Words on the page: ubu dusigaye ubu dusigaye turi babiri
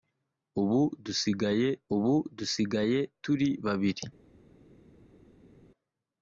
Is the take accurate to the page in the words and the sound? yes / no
yes